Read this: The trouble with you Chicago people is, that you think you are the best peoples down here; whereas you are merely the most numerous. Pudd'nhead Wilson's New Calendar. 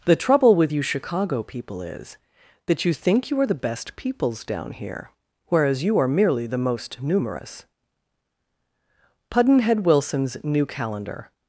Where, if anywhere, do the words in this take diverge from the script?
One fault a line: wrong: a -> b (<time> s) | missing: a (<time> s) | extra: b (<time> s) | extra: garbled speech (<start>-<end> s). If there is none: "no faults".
no faults